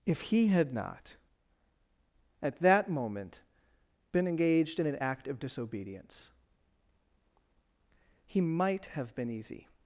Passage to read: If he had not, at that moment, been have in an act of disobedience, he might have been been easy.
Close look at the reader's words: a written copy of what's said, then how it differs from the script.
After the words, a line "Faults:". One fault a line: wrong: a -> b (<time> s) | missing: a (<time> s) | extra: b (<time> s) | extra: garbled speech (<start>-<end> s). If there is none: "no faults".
If he had not, at that moment, been engaged in an act of disobedience, he might have been easy.
Faults:
wrong: have -> engaged (4.3 s)
missing: been (9.3 s)